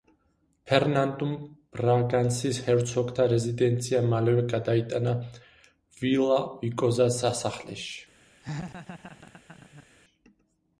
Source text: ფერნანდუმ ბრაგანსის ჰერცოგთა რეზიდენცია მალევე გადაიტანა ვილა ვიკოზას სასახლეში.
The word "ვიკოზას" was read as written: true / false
true